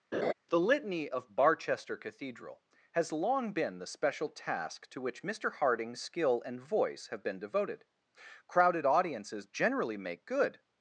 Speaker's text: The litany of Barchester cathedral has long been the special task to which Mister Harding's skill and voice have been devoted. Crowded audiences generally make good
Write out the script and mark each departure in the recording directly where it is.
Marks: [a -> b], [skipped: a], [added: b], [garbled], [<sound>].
[laugh] The litany of Barchester cathedral has long been the special task to which Mister Harding's skill and voice have been devoted. Crowded audiences generally make good